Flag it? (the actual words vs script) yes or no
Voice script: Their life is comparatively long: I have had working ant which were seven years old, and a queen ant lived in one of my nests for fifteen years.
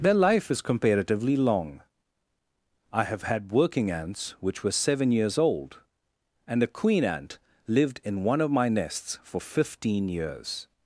yes